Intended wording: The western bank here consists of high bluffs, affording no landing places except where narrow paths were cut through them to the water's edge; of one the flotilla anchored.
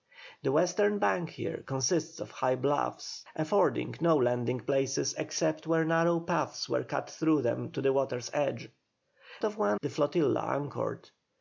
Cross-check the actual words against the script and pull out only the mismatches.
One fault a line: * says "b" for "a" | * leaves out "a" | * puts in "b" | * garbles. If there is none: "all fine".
all fine